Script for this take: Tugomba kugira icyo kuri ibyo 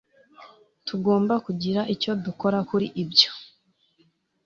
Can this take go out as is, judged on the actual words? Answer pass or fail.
fail